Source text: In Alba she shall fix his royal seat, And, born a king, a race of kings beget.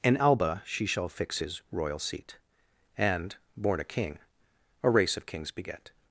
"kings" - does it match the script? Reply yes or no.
yes